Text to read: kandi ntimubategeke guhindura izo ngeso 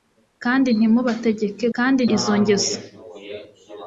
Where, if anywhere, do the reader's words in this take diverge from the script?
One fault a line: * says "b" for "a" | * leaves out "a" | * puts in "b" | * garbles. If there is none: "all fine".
* says "kandi" for "guhindura"